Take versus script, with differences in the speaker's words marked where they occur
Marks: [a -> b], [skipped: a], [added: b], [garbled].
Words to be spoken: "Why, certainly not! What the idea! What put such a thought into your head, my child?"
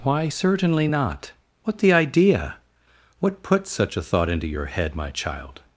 "Why, certainly not! What the idea! What put such a thought into your head, my child?"